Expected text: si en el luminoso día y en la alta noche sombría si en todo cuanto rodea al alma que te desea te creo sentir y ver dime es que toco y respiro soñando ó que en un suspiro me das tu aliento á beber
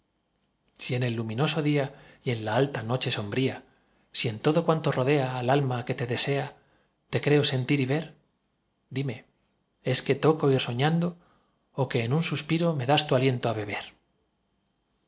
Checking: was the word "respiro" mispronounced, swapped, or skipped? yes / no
yes